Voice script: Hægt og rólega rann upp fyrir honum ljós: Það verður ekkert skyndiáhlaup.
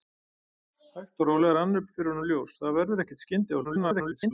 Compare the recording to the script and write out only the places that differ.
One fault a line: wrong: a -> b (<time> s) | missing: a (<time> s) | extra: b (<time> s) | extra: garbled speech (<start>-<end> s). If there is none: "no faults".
extra: garbled speech (3.6-4.3 s)